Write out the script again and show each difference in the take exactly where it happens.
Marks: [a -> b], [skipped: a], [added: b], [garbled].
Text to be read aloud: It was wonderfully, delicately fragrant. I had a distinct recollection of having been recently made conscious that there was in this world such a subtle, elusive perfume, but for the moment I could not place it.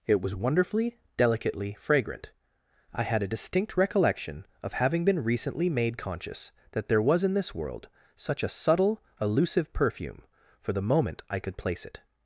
It was wonderfully, delicately fragrant. I had a distinct recollection of having been recently made conscious that there was in this world such a subtle, elusive perfume, [skipped: but] for the moment I could [skipped: not] place it.